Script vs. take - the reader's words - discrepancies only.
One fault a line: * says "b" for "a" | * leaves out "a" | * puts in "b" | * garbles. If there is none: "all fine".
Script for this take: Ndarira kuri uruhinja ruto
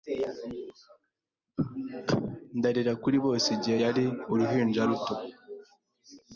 * puts in "bose Igihe yari"